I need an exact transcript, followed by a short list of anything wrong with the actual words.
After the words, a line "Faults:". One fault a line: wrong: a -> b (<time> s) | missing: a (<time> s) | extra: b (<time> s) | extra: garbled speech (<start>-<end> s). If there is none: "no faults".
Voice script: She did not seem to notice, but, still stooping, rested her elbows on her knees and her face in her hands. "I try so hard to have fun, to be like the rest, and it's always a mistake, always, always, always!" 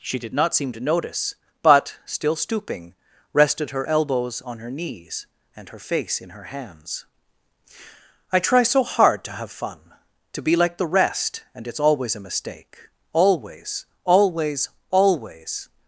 She did not seem to notice, but, still stooping, rested her elbows on her knees and her face in her hands. "I try so hard to have fun, to be like the rest, and it's always a mistake, always, always, always!"
Faults:
no faults